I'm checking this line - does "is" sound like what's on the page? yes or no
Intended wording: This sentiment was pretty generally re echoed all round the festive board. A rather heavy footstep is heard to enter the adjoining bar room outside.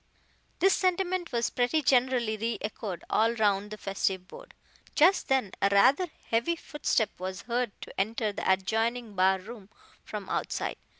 no